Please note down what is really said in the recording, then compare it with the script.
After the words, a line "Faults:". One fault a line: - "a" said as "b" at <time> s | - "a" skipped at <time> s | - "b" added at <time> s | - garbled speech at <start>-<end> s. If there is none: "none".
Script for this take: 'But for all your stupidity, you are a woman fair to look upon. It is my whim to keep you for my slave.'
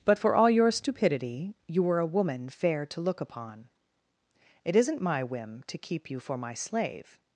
'But for all your stupidity, you were a woman fair to look upon. It isn't my whim to keep you for my slave.'
Faults:
- "are" said as "were" at 1.8 s
- "is" said as "isn't" at 4.8 s